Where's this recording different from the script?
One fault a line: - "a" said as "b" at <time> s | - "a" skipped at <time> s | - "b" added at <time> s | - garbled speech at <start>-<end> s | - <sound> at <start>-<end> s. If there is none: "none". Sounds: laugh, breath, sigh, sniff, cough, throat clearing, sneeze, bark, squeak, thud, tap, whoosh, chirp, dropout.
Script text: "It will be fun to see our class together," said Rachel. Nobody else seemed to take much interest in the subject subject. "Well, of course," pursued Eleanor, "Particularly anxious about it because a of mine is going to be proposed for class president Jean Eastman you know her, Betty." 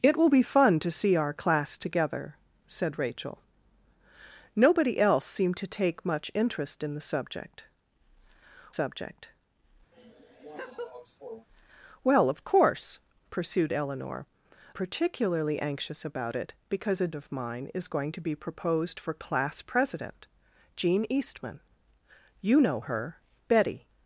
- laugh at 9.9-11.5 s